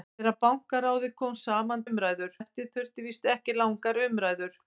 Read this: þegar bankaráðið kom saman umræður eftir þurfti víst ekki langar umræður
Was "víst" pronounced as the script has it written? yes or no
yes